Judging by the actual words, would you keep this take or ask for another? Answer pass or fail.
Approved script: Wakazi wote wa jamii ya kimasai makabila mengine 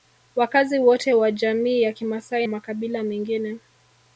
pass